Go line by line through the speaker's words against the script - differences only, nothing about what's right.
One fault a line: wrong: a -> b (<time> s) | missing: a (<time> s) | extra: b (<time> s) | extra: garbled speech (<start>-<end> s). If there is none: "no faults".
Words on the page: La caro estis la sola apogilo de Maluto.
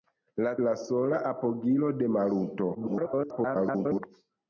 missing: caro estis (0.5 s)
extra: garbled speech (2.7-4.0 s)